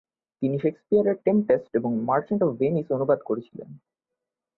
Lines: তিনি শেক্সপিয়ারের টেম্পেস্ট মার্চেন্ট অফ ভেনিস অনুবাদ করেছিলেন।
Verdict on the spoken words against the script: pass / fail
fail